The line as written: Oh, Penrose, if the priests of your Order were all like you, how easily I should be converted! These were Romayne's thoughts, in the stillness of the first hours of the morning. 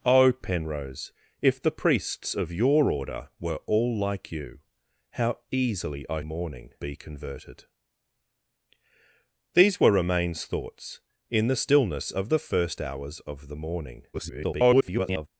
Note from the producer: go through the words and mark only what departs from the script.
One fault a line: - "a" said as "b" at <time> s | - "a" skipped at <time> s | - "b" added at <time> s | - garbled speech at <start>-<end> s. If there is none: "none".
- "should" said as "morning" at 6.2 s
- garbled speech at 14.1-15.3 s